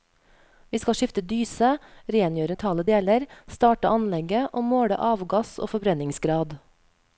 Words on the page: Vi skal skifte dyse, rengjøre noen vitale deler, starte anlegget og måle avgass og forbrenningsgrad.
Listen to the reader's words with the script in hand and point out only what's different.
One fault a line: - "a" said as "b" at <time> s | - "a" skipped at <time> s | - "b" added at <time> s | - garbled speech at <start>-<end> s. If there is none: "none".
- "noen" skipped at 2.6 s